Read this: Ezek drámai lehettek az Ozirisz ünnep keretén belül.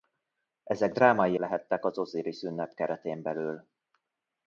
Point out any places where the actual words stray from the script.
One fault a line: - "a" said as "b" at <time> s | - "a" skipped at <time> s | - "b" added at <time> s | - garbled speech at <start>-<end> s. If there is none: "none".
none